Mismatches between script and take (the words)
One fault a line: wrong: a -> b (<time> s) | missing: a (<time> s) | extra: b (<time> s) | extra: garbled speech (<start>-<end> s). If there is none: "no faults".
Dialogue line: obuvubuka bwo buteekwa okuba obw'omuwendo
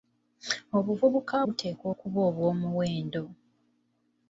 missing: bwo (1.4 s)